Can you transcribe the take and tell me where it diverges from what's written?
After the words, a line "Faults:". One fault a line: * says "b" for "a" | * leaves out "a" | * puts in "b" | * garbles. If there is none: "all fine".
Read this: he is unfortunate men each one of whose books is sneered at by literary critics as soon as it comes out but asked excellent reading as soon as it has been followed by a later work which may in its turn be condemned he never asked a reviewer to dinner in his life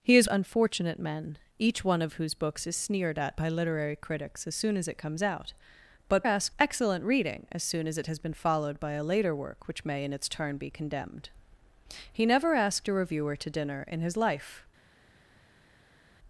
he is unfortunate men each one of whose books is sneered at by literary critics as soon as it comes out but asked excellent reading as soon as it has been followed by a later work which may in its turn be condemned he never asked a reviewer to dinner in his life
Faults:
all fine